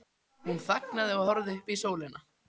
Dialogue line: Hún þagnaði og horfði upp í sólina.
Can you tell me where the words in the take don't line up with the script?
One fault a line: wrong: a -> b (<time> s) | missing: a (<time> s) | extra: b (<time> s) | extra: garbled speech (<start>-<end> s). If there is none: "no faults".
no faults